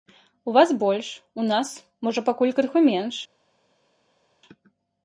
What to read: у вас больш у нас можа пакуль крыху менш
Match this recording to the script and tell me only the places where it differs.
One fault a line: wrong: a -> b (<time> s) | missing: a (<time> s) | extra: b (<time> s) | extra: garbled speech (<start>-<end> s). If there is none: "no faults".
no faults